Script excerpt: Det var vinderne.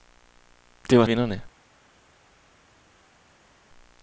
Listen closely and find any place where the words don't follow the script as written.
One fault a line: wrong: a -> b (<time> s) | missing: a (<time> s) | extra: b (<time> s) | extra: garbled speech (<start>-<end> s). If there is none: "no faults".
no faults